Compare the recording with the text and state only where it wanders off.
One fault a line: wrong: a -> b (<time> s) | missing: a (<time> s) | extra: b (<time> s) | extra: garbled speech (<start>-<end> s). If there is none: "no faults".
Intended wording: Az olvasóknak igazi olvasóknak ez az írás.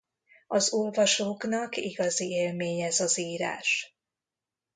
wrong: olvasóknak -> élmény (2.3 s)